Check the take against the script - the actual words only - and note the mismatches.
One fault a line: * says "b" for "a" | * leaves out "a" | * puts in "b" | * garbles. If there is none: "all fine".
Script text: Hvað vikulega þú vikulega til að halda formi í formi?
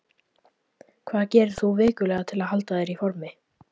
* says "gerir" for "vikulega"
* says "þér" for "formi"